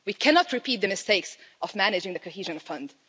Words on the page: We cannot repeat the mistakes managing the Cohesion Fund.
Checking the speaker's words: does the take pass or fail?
fail